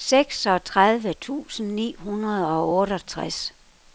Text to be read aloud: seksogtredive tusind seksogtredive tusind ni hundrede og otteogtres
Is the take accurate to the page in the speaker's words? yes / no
no